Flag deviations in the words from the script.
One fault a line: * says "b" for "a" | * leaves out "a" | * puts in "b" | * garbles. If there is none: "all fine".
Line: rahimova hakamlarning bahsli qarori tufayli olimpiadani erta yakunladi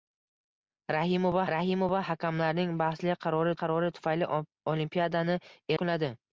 * puts in "rahimova"
* puts in "qarori"
* leaves out "erta"